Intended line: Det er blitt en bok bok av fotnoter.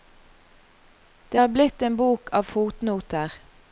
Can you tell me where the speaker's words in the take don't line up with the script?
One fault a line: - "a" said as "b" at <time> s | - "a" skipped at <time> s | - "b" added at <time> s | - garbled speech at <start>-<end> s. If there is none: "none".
- "bok" skipped at 2.3 s